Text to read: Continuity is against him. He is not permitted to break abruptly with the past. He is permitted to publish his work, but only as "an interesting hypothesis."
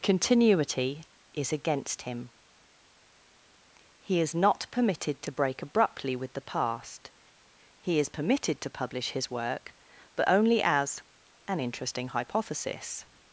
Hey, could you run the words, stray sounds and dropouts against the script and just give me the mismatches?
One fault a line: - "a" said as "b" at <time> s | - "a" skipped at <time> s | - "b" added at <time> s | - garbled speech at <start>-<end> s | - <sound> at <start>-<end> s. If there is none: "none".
none